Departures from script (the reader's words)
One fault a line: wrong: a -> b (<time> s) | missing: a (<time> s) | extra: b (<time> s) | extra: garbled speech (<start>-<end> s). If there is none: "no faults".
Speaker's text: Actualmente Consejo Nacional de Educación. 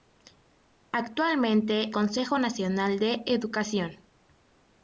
no faults